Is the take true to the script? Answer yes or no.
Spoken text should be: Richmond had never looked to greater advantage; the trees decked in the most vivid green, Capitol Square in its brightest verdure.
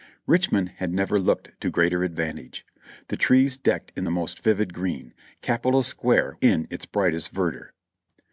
yes